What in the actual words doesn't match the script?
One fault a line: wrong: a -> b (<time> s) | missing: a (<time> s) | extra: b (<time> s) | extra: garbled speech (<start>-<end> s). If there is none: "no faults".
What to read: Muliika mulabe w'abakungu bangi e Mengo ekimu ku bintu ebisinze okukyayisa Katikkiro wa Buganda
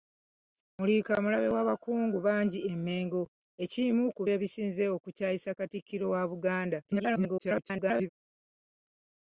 missing: bintu (4.2 s)
extra: garbled speech (6.9-8.1 s)